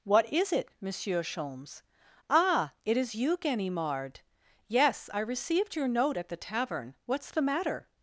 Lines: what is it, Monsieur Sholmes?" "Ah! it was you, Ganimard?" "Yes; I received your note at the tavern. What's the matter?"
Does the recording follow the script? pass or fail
fail